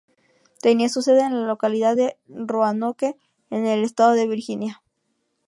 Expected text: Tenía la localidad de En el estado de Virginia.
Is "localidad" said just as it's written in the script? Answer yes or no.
yes